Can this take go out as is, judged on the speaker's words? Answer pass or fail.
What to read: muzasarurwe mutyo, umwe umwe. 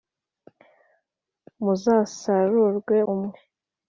fail